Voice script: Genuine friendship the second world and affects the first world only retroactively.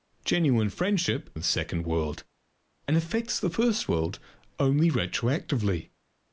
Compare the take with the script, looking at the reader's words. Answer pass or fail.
pass